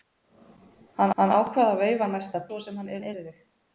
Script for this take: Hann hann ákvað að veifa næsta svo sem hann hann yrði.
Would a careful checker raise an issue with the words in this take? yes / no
no